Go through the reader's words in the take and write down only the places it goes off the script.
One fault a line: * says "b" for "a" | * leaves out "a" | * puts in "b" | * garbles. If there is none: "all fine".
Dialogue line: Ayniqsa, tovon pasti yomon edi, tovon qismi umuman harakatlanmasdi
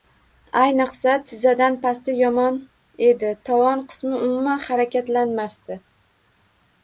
* says "tizzadan" for "tovon"